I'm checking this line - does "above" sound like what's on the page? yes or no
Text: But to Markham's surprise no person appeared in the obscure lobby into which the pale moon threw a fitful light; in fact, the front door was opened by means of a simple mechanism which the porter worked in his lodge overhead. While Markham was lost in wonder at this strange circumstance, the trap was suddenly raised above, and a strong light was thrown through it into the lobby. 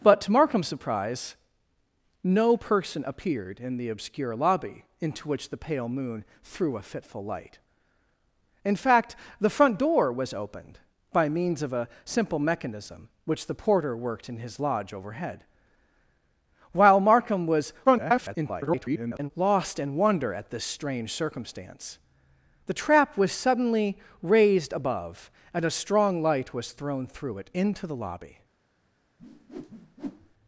yes